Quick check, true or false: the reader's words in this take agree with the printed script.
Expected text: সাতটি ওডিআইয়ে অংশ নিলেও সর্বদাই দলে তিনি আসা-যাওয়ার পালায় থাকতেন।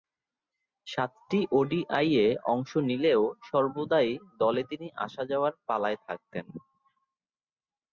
true